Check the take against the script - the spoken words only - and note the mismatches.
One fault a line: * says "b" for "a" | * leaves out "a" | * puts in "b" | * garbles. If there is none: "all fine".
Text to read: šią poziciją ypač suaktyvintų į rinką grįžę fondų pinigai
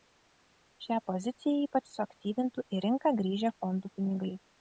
all fine